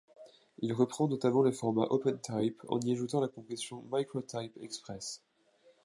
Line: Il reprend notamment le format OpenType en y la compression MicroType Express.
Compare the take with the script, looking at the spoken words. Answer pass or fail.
fail